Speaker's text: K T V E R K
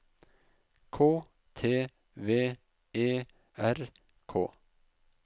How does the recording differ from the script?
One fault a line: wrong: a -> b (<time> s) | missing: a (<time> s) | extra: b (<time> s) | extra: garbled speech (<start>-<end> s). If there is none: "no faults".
no faults